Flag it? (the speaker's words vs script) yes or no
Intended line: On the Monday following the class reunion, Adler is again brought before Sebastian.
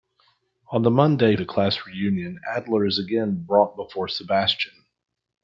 yes